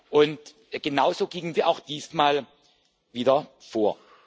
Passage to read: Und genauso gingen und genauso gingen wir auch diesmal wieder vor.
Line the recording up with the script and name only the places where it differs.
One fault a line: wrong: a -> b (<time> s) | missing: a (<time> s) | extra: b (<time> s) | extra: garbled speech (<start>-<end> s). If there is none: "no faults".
missing: und genauso gingen (1.5 s)